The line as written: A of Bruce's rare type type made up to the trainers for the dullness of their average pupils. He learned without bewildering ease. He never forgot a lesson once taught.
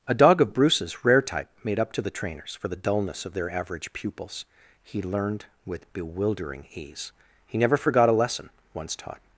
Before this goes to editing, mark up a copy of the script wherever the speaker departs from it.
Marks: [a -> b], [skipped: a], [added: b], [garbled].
A [added: dog] of Bruce's rare type [skipped: type] made up to the trainers for the dullness of their average pupils. He learned [without -> with] bewildering ease. He never forgot a lesson once taught.